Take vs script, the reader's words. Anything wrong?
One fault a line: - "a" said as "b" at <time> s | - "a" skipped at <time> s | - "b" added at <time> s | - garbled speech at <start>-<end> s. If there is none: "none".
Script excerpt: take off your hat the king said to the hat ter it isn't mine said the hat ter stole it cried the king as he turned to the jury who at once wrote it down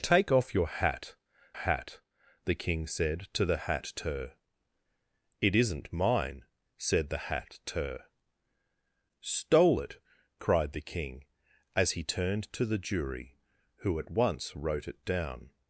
- "hat" added at 1.5 s